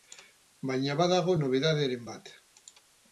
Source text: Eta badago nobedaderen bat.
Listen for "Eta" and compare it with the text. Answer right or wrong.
wrong